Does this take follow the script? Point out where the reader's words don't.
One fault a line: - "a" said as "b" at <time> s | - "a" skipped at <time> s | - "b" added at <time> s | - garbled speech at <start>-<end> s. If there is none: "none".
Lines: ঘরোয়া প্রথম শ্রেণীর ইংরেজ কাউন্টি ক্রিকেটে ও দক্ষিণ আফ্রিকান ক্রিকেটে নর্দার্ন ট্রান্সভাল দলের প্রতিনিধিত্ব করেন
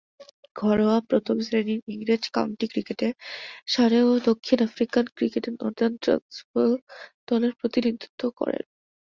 - "সারে" added at 3.7 s